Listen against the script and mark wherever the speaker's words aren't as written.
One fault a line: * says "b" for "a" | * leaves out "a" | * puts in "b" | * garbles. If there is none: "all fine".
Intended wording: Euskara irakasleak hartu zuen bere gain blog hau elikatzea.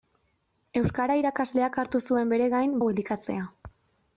* leaves out "blog"